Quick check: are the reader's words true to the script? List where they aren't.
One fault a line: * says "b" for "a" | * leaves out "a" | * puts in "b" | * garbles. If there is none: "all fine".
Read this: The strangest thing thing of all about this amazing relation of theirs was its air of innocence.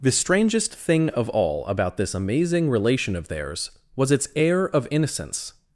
* leaves out "thing"